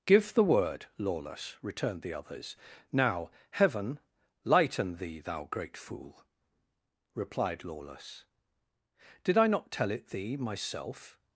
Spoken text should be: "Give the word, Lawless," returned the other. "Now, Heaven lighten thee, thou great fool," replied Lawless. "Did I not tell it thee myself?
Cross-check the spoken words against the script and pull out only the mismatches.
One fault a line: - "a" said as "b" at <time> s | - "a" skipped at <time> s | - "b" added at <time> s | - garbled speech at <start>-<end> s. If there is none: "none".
- "other" said as "others" at 2.1 s